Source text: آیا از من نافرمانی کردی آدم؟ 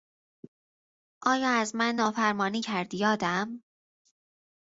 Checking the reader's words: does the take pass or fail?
pass